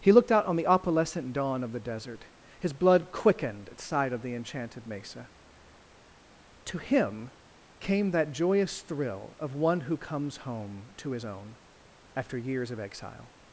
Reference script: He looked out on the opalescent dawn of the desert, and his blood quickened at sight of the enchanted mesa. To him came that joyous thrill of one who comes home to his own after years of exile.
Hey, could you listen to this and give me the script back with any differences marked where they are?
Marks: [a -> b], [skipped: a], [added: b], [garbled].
He looked out on the opalescent dawn of the desert, [skipped: and] his blood quickened at sight of the enchanted mesa. To him came that joyous thrill of one who comes home to his own after years of exile.